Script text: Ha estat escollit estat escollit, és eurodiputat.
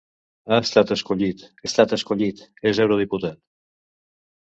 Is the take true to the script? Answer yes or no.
yes